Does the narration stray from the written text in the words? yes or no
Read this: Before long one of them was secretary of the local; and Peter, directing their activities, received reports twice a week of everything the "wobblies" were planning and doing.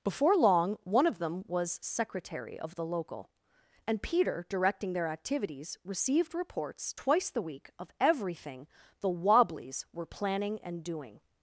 yes